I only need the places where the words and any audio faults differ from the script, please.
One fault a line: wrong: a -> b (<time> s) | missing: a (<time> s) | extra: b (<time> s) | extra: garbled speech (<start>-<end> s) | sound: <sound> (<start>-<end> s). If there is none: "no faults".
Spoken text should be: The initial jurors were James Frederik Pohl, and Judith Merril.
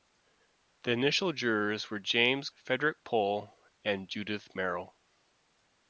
no faults